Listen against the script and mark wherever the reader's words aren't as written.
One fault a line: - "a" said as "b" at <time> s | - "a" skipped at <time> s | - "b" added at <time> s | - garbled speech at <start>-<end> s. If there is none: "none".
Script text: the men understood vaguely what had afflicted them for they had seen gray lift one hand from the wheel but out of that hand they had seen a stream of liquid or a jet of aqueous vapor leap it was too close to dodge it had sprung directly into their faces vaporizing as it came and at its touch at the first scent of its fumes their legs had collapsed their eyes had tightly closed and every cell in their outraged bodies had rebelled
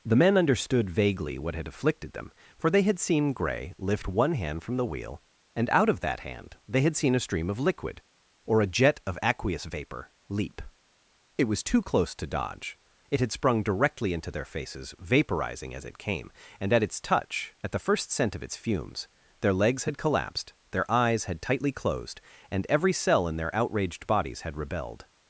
- "but" said as "and" at 5.6 s